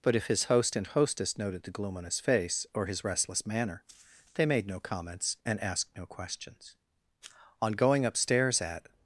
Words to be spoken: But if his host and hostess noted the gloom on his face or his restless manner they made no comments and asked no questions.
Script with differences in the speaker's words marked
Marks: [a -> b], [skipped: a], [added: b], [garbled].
But if his host and hostess noted the gloom on his face or his restless manner they made no comments and asked no questions. [added: On going upstairs at]